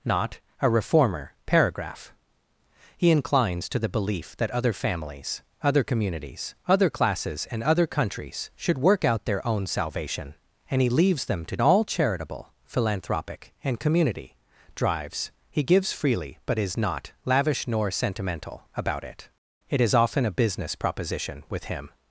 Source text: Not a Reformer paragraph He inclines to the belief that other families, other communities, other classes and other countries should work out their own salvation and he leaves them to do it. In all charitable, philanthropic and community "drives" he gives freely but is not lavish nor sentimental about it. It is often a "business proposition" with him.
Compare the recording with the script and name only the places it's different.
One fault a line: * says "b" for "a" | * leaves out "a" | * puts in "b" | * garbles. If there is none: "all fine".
* leaves out "do it In"